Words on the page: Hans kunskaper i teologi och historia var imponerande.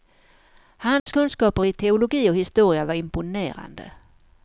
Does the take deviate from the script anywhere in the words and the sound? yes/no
yes